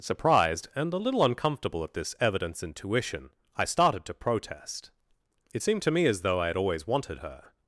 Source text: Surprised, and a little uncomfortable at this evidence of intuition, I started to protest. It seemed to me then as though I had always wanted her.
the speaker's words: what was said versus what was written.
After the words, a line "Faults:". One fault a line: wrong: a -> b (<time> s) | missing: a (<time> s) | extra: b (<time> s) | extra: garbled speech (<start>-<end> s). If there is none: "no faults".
Surprised, and a little uncomfortable at this evidence intuition, I started to protest. It seemed to me as though I had always wanted her.
Faults:
missing: of (2.6 s)
missing: then (6.0 s)